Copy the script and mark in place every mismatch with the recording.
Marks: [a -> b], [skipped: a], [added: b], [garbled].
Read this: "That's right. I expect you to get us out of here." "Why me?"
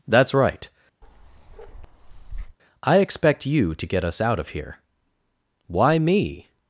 "That's right. I expect you to get us out of here." "Why me?"